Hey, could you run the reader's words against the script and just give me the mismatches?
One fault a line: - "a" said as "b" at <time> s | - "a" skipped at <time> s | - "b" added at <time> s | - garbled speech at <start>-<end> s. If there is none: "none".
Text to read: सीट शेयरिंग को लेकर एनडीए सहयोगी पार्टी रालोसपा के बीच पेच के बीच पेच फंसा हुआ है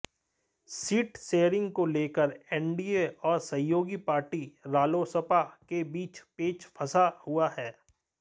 - "और" added at 3.2 s
- "के बीच पेच" skipped at 6.6 s